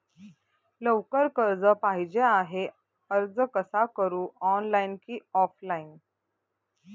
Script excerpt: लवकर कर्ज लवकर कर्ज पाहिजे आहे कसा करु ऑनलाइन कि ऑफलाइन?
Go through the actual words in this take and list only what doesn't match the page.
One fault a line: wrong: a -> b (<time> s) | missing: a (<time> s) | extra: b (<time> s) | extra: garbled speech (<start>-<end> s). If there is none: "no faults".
missing: लवकर कर्ज (1.6 s)
extra: अर्ज (3.1 s)